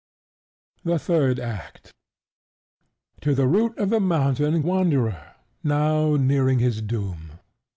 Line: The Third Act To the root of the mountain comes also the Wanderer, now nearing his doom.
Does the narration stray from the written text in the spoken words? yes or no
yes